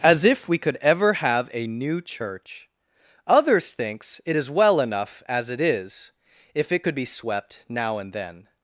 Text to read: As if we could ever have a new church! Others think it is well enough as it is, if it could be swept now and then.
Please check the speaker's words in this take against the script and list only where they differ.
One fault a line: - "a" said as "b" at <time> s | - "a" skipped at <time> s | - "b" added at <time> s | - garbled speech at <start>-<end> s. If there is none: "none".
- "think" said as "thinks" at 3.7 s